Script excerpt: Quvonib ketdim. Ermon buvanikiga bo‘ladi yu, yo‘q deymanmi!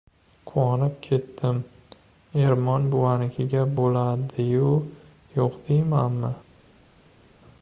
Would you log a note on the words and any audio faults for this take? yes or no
no